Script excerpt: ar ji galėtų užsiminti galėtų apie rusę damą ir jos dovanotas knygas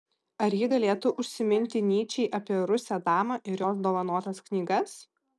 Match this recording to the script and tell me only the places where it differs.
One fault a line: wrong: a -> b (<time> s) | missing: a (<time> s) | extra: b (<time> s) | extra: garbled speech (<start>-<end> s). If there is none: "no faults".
wrong: galėtų -> nyčei (1.9 s)